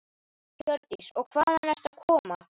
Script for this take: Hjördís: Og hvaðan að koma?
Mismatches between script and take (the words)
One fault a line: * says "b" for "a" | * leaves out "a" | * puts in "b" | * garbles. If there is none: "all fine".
* puts in "ertu"